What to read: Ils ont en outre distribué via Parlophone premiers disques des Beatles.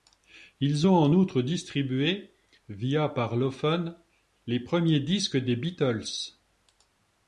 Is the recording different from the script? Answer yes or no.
yes